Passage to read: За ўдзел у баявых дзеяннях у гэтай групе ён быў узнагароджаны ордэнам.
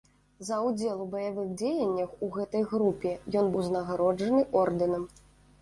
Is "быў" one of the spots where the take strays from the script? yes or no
yes